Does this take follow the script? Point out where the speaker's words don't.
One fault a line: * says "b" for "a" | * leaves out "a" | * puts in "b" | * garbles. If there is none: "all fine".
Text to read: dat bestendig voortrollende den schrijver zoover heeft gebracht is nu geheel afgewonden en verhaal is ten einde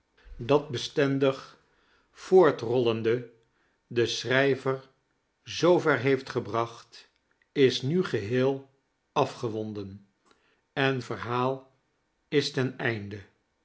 all fine